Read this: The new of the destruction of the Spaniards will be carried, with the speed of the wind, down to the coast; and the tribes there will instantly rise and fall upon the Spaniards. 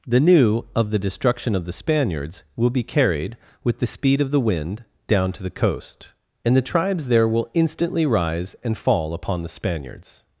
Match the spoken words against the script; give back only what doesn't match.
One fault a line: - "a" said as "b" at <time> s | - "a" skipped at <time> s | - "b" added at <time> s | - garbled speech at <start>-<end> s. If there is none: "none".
none